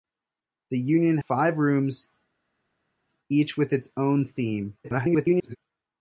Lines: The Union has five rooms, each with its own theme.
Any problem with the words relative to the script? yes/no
yes